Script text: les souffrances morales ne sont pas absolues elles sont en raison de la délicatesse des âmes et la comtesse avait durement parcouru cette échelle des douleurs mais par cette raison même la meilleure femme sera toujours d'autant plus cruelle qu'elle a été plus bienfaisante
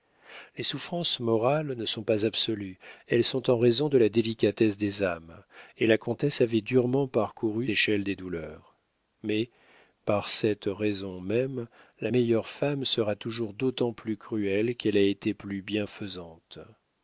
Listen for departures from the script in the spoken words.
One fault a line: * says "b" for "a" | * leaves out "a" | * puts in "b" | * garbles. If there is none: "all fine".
* leaves out "cette"